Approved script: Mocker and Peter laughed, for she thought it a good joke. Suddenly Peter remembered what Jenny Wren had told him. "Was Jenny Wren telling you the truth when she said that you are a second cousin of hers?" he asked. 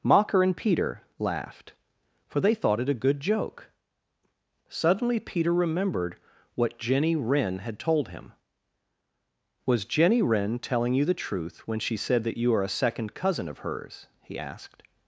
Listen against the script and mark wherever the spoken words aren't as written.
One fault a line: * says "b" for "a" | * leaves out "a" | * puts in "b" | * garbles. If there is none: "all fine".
* says "they" for "she"